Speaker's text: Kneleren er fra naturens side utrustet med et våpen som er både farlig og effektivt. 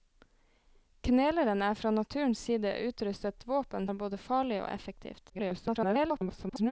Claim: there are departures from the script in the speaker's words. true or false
true